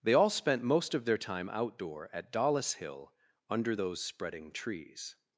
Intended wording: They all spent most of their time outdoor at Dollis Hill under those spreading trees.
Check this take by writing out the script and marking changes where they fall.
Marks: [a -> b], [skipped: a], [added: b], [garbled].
They all spent most of their time outdoor at Dollis Hill under those spreading trees.